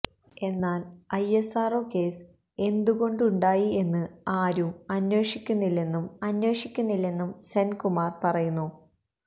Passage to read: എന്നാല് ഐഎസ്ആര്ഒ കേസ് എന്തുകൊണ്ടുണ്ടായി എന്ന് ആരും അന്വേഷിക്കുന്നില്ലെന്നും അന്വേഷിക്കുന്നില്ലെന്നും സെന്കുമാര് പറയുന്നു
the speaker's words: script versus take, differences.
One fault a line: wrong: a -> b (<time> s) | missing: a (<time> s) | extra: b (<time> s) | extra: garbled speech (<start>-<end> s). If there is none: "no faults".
no faults